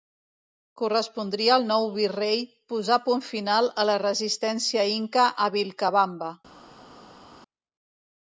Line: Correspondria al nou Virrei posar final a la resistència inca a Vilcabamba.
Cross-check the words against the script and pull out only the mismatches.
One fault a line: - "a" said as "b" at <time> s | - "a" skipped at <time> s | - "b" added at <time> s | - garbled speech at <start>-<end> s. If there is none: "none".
- "punt" added at 3.1 s